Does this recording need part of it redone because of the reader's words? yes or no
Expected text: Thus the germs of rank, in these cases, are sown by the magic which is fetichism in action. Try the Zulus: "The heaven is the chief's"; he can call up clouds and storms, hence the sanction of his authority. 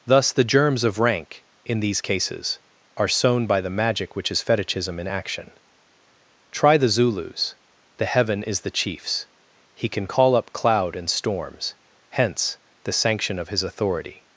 yes